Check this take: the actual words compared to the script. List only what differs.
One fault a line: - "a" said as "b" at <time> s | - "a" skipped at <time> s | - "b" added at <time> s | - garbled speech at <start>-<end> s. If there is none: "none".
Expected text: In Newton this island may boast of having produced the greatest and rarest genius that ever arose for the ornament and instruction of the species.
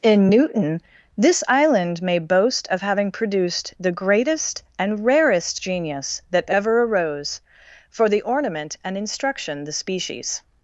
- "of" skipped at 9.7 s